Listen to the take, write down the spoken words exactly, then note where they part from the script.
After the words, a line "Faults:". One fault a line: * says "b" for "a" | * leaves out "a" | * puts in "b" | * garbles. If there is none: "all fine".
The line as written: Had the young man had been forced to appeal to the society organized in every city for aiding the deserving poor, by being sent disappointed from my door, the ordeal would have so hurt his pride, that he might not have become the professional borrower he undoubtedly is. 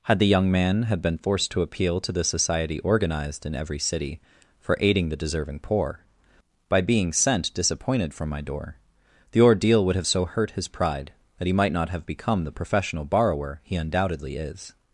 Had the young man had been forced to appeal to the society organized in every city for aiding the deserving poor, by being sent disappointed from my door, the ordeal would have so hurt his pride, that he might not have become the professional borrower he undoubtedly is.
Faults:
all fine